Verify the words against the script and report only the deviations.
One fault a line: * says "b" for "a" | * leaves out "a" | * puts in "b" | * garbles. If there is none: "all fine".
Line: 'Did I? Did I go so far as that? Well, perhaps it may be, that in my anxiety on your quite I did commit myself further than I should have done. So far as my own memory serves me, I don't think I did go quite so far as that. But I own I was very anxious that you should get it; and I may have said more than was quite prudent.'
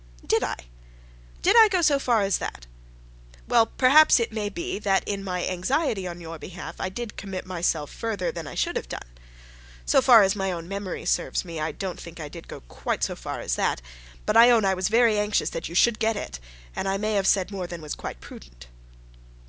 * says "behalf" for "quite"